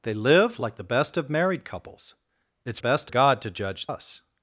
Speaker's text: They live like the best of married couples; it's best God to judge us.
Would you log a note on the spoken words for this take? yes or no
no